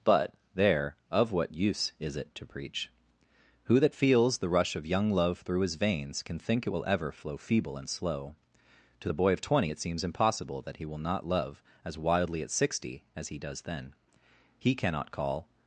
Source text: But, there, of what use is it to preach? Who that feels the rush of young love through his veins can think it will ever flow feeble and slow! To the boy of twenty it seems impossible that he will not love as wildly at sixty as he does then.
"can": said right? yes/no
yes